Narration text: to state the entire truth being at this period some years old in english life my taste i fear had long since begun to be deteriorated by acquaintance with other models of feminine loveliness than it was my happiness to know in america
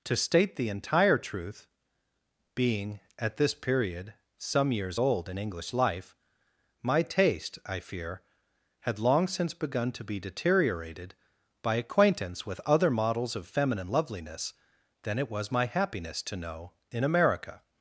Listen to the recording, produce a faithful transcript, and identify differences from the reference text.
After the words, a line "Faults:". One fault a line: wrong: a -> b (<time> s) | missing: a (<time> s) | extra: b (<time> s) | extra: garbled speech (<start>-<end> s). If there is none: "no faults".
to state the entire truth being at this period some years old in english life my taste i fear had long since begun to be deteriorated by acquaintance with other models of feminine loveliness than it was my happiness to know in america
Faults:
no faults